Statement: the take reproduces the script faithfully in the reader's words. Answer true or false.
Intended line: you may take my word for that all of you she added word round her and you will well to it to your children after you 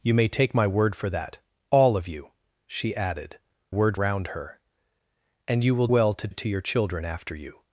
true